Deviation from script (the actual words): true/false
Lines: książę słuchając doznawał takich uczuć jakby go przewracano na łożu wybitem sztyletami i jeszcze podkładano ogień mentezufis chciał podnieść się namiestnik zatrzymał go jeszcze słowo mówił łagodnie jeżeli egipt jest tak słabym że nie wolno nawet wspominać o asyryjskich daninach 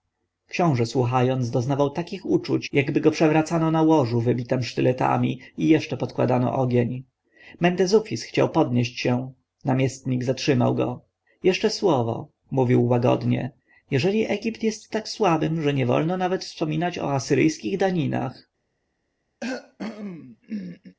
false